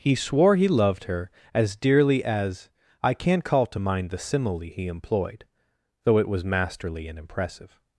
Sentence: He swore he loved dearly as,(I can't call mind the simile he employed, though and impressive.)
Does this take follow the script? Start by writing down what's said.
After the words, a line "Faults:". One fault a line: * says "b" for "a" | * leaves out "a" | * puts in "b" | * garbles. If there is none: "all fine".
He swore he loved her as dearly as,(I can't call to mind the simile he employed, though it was masterly and impressive.)
Faults:
* puts in "her as"
* puts in "to"
* puts in "it was masterly"